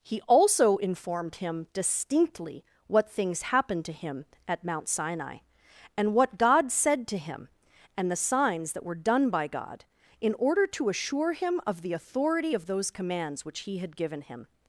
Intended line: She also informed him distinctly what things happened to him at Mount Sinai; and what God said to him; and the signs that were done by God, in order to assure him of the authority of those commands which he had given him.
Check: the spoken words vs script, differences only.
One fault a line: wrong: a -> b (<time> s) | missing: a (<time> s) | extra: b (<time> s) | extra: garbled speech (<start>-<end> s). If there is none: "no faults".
wrong: She -> He (0.0 s)